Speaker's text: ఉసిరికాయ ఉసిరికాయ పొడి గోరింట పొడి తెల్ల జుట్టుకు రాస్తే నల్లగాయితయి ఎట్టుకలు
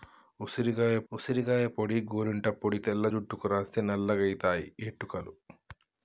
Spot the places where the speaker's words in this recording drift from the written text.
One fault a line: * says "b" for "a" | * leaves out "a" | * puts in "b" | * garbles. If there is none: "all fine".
all fine